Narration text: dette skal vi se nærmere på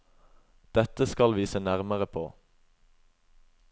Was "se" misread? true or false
false